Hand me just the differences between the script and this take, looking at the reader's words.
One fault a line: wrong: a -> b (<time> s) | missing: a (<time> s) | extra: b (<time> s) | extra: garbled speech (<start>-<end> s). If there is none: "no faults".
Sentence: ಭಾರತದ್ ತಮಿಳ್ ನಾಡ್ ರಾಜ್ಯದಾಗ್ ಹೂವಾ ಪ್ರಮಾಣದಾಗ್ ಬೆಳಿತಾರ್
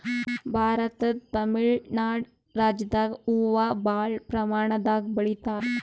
extra: ಭಾಳ್ (3.8 s)